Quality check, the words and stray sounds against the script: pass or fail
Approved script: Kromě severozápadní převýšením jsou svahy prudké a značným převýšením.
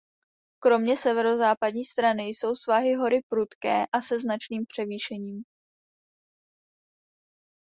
fail